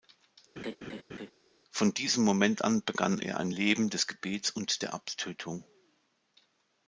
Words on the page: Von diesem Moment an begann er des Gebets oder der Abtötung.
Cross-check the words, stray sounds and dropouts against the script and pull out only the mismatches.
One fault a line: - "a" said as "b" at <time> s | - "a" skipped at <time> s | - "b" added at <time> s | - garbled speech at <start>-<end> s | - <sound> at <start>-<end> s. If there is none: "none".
- laugh at 0.6-1.3 s
- "ein Leben" added at 3.4 s
- "oder" said as "und" at 4.5 s